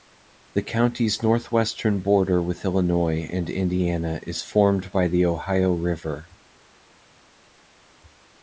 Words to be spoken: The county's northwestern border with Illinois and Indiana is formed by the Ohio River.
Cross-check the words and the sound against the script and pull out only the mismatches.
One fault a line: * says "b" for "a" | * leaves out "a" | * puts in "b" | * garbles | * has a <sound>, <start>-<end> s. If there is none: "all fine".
all fine